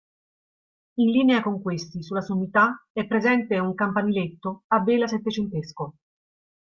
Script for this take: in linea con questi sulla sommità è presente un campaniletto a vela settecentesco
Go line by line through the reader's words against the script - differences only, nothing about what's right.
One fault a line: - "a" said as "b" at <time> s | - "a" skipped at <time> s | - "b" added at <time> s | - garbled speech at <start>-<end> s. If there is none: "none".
none